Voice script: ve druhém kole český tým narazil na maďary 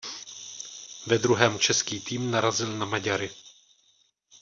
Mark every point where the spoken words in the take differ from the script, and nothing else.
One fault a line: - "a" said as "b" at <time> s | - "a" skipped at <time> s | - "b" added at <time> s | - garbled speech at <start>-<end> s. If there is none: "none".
- "kole" skipped at 1.6 s